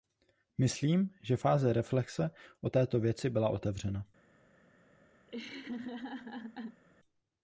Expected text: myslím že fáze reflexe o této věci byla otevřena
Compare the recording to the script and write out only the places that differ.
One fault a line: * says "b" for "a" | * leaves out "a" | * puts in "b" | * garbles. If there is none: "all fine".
all fine